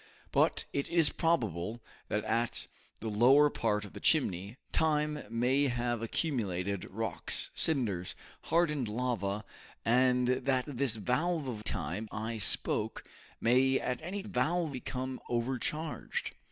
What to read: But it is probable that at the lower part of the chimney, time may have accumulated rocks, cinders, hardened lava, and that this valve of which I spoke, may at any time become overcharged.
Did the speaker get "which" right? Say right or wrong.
wrong